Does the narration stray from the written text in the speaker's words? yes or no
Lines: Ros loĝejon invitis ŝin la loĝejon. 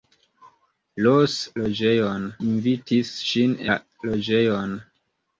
no